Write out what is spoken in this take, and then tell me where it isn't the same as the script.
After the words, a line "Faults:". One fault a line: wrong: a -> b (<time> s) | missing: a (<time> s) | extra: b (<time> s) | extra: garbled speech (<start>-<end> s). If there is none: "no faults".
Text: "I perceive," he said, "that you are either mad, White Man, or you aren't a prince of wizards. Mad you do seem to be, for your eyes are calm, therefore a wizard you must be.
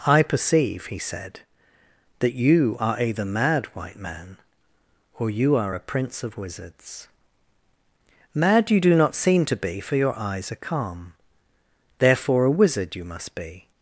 "I perceive," he said, "that you are either mad, White Man, or you are a prince of wizards. Mad you do not seem to be, for your eyes are calm, therefore a wizard you must be.
Faults:
wrong: aren't -> are (5.6 s)
extra: not (9.0 s)